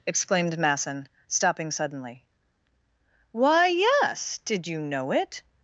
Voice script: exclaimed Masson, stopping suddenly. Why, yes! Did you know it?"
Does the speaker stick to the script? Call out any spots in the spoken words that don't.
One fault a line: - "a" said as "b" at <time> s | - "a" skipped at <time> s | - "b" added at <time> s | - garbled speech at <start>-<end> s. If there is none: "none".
none